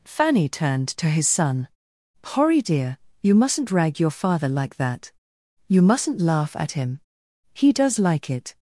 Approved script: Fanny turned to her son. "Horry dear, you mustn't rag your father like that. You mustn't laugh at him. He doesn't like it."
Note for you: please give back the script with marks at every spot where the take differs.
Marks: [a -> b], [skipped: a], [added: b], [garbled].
Fanny turned to [her -> his] son. "Horry dear, you mustn't rag your father like that. You mustn't laugh at him. He [doesn't -> does] like it."